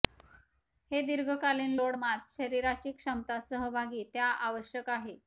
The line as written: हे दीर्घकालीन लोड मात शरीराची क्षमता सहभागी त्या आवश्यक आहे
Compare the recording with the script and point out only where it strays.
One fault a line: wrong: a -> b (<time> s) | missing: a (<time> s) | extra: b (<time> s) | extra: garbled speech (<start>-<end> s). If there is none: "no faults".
no faults